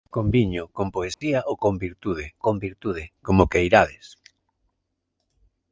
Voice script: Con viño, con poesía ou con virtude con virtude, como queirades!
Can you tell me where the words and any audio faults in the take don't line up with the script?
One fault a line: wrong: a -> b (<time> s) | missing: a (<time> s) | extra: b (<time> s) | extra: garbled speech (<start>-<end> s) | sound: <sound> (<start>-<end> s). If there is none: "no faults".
sound: dropout (1.1-1.2 s)